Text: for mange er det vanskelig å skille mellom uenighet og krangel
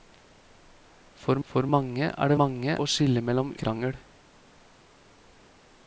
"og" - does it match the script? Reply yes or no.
no